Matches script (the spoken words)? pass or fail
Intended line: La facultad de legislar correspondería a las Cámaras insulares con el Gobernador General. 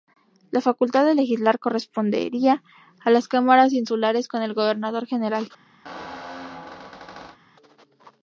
pass